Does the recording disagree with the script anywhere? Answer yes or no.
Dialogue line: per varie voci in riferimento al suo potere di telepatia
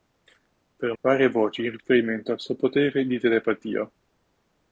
no